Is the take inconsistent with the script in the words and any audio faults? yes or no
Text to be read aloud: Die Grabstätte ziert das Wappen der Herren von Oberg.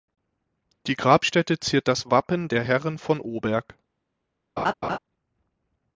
yes